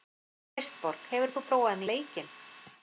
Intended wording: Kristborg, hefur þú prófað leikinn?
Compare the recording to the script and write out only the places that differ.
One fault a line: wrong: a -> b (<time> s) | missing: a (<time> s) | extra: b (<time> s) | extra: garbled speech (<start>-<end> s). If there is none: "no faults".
no faults